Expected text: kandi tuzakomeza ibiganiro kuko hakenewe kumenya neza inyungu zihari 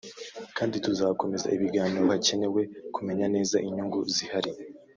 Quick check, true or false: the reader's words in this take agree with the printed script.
false